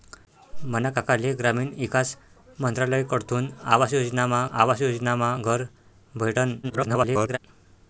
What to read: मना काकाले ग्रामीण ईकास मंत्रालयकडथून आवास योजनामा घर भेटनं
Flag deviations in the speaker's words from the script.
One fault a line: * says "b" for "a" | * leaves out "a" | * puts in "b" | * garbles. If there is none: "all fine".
* puts in "आवास योजनामा"
* garbles